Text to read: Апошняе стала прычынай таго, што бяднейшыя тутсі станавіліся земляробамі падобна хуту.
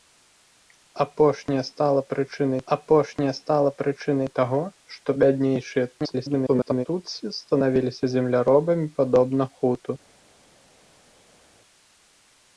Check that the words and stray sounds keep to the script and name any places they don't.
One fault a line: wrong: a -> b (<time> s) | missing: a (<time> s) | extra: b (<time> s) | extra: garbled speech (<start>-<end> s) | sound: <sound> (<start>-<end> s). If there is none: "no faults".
extra: апошняе стала прычынай (2.7 s)
extra: garbled speech (6.0-6.9 s)